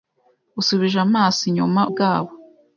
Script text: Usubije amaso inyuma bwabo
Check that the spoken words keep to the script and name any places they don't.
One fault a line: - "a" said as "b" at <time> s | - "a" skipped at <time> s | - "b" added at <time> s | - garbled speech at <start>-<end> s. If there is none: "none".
none